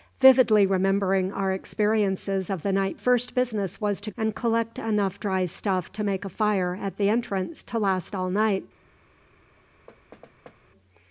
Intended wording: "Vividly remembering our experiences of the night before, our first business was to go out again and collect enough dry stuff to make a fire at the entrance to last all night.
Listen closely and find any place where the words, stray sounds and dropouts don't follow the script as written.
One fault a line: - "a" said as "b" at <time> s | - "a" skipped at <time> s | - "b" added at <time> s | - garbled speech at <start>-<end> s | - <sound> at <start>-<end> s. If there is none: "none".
- "before our" skipped at 3.0 s
- "go out again" skipped at 4.1 s
- thud at 9.9-10.6 s